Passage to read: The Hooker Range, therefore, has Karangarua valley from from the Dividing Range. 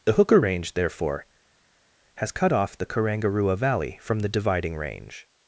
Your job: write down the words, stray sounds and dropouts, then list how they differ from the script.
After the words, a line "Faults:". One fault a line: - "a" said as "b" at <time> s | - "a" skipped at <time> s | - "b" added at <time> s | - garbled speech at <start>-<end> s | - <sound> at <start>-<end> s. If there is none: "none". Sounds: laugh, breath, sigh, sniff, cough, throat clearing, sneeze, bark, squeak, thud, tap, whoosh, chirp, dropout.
The Hooker Range, therefore, has cut off the Karangarua valley from the Dividing Range.
Faults:
- "cut off the" added at 2.3 s
- "from" skipped at 4.2 s